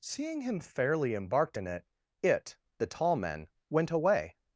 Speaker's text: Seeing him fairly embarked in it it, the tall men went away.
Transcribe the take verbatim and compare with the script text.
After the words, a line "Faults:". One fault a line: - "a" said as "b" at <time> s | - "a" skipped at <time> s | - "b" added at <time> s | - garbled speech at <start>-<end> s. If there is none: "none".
Seeing him fairly embarked in it it, the tall men went away.
Faults:
none